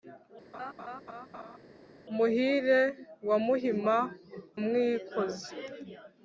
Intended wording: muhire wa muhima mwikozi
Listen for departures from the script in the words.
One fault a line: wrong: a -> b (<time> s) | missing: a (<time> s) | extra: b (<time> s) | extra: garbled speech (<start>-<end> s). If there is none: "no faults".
no faults